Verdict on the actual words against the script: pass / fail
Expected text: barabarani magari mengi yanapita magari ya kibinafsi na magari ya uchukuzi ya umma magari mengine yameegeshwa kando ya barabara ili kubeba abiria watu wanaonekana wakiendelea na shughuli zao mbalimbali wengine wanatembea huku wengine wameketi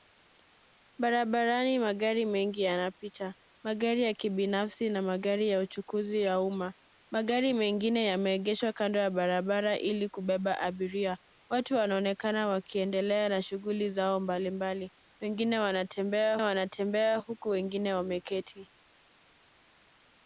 fail